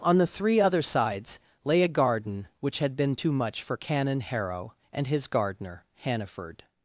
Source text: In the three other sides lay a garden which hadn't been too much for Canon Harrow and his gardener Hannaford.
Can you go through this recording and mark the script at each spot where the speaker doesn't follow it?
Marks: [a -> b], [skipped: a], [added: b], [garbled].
[In -> On] the three other sides lay a garden which [hadn't -> had] been too much for Canon Harrow and his gardener Hannaford.